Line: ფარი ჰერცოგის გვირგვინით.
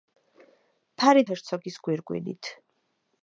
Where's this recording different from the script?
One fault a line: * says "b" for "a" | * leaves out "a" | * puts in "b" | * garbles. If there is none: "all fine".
all fine